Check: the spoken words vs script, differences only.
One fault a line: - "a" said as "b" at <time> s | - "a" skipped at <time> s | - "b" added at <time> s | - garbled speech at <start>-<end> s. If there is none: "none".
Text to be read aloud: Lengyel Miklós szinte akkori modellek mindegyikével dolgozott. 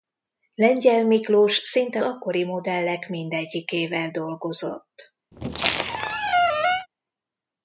none